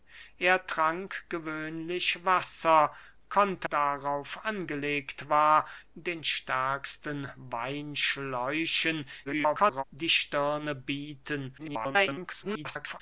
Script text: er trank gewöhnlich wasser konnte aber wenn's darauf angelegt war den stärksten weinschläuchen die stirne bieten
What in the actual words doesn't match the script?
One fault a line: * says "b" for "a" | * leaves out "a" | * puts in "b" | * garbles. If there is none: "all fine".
* leaves out "aber wenn's"
* garbles
* garbles